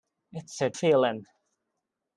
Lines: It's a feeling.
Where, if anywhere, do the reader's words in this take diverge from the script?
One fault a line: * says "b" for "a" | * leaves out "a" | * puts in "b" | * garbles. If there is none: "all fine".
all fine